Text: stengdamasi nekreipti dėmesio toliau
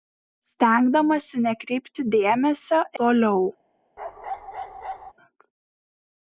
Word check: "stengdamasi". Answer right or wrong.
right